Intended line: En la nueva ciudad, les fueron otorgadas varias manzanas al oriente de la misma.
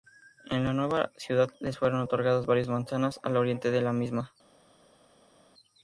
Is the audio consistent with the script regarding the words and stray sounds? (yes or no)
yes